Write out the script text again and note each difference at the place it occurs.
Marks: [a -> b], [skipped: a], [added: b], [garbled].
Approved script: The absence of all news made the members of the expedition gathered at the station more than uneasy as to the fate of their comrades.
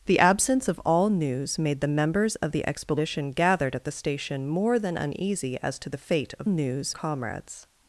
The absence of all news made the members of the expedition gathered at the station more than uneasy as to the fate of [their -> news] comrades.